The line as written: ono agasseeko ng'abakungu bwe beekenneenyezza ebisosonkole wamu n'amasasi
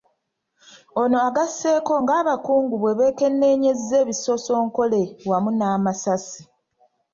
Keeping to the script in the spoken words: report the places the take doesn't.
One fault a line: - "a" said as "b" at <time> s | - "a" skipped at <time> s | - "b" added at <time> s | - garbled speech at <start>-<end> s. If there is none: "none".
none